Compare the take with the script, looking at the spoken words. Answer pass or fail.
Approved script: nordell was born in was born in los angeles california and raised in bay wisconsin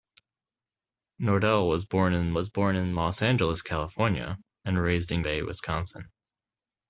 pass